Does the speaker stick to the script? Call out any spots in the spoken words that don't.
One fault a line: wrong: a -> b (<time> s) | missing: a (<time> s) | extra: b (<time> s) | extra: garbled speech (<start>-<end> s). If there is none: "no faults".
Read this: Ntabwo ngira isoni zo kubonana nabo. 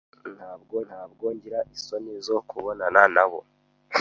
extra: ntabwo (0.9 s)